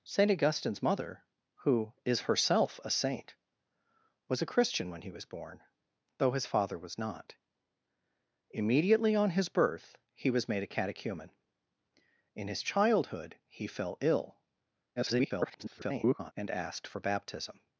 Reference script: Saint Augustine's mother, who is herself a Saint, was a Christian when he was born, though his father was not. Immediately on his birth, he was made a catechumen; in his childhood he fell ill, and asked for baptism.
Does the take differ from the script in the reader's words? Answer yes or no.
yes